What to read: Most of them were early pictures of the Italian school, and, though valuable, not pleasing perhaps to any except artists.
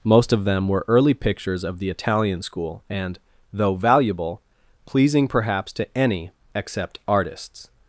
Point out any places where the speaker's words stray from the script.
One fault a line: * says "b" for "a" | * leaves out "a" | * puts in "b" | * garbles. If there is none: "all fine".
* leaves out "not"